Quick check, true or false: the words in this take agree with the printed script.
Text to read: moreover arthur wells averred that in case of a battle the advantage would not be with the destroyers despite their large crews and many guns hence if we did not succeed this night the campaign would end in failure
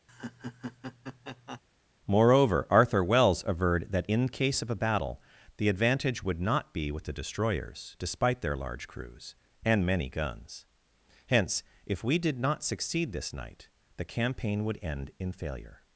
true